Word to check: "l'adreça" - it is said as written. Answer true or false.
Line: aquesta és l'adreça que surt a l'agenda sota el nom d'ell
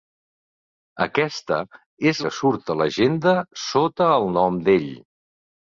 false